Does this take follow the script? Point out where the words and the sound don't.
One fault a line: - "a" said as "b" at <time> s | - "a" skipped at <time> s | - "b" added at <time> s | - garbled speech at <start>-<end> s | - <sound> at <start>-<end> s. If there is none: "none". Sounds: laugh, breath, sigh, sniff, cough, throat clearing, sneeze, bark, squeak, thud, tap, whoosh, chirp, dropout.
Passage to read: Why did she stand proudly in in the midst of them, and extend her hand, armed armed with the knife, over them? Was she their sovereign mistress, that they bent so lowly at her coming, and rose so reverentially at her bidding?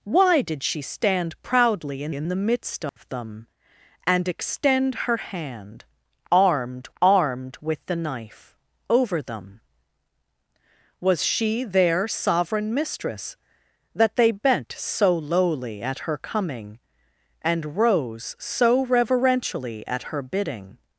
- dropout at 2.9-3.0 s